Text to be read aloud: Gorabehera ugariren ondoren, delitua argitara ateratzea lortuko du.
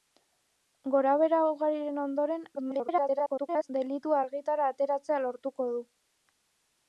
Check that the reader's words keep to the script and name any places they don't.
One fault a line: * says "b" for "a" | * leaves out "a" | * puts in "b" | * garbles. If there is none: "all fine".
* garbles